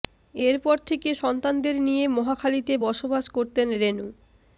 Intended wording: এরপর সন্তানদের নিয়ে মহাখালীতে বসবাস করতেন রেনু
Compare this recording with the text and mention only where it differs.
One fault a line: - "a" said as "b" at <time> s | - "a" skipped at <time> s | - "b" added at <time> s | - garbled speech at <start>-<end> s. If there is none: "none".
- "থেকে" added at 0.9 s